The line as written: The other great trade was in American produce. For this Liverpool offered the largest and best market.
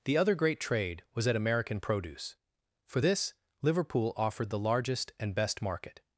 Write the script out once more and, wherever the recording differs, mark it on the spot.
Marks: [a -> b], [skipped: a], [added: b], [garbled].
The other great trade was [in -> at] American produce. For this Liverpool offered the largest and best market.